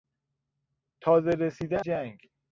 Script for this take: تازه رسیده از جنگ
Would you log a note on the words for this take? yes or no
yes